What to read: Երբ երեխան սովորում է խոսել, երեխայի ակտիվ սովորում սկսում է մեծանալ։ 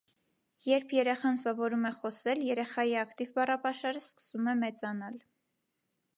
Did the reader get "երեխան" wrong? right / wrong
right